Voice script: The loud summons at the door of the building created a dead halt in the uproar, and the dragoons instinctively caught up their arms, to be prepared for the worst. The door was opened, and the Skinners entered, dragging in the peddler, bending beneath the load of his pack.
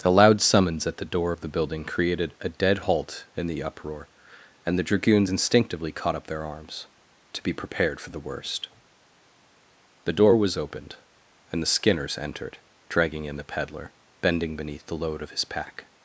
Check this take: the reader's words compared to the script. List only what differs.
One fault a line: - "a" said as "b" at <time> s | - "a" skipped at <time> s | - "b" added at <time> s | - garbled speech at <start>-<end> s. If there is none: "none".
none